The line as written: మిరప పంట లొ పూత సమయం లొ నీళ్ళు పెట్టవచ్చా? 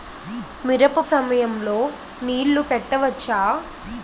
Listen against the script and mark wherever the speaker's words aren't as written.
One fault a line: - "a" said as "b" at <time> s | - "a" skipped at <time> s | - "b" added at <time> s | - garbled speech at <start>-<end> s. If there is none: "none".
- "పంట లొ పూత" skipped at 1.0 s